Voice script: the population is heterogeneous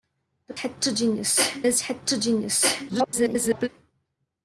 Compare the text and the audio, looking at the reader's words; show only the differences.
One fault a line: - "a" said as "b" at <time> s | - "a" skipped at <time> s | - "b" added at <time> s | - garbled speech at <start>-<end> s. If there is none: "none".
- "population" said as "heterogeneous" at 0.5 s
- garbled speech at 2.9-3.7 s